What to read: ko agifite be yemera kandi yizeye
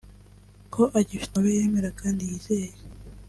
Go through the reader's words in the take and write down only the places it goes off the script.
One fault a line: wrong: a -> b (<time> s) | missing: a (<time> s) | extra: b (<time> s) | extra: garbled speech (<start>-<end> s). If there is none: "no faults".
no faults